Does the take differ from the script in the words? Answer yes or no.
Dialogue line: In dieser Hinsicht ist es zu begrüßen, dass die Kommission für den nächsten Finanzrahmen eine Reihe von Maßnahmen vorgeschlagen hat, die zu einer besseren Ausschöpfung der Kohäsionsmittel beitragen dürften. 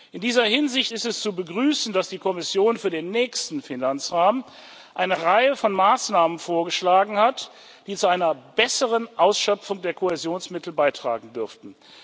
no